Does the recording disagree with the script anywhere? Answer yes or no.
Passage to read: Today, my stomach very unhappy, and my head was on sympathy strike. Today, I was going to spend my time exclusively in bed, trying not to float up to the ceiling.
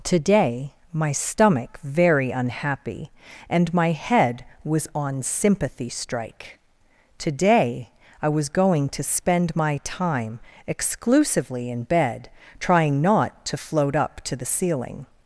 no